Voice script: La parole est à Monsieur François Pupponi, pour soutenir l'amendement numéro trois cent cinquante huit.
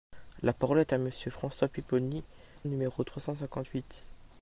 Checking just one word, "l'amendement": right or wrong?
wrong